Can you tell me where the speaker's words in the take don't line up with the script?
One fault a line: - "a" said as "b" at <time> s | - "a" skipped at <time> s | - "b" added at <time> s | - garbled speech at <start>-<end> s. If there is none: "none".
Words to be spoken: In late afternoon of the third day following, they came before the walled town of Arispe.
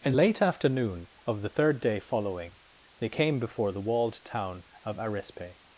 none